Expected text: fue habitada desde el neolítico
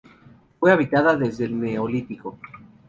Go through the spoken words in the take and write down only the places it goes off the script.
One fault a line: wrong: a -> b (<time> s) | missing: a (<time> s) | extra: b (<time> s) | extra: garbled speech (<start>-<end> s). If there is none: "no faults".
no faults